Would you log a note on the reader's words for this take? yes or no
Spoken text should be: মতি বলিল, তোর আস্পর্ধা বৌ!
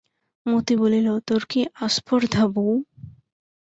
yes